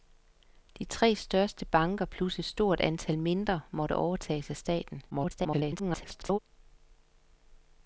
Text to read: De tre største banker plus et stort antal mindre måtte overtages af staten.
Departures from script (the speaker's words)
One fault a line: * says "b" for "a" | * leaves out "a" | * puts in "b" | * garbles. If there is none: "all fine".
* garbles